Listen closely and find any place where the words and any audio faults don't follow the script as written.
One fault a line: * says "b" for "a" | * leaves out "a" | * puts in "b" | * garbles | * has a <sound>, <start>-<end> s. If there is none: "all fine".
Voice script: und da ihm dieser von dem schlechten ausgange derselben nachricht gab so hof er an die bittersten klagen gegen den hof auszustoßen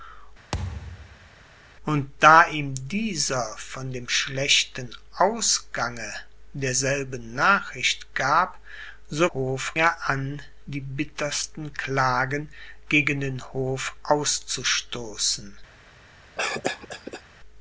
* has a thud, 0.5-1.3 s
* has a cough, 16.4-17.2 s